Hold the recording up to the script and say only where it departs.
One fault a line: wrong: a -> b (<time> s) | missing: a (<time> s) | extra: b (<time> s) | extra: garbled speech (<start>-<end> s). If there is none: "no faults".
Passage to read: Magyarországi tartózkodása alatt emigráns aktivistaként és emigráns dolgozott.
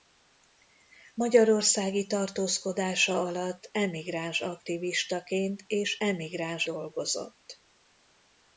no faults